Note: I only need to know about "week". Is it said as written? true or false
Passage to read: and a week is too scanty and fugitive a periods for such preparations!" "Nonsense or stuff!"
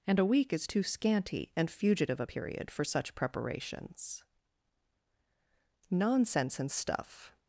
true